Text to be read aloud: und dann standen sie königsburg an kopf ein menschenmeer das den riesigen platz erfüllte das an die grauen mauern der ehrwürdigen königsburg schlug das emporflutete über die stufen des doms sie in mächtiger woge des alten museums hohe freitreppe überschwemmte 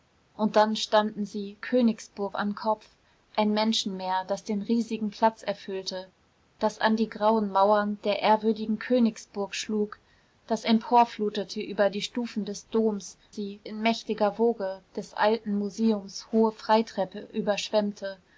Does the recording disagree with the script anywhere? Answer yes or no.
no